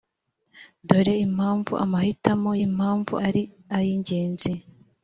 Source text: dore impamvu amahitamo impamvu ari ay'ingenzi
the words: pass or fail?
pass